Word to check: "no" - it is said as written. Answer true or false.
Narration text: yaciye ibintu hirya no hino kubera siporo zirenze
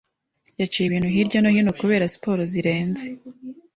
true